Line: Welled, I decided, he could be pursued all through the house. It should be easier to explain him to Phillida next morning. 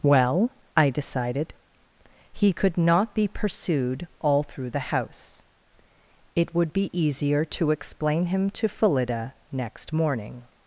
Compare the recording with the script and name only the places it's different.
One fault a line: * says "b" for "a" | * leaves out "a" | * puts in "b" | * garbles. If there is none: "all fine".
* says "Well" for "Welled"
* puts in "not"
* says "would" for "should"